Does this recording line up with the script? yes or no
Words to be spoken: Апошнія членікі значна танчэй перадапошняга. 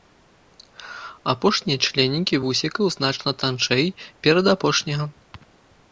no